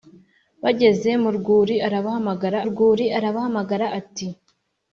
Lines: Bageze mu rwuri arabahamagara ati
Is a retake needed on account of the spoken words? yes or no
yes